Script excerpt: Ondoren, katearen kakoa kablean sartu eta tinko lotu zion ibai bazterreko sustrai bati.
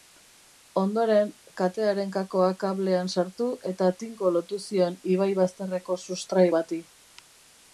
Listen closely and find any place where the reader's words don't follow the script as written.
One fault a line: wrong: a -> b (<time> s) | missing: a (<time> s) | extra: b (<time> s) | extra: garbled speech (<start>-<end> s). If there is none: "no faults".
no faults